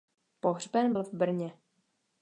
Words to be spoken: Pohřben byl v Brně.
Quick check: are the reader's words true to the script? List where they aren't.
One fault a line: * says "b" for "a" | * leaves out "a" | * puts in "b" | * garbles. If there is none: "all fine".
all fine